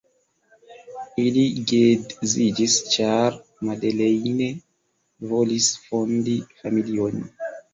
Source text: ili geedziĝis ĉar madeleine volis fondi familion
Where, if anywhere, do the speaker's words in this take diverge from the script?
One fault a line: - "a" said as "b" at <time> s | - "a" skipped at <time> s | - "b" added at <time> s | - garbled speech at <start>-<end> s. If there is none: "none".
none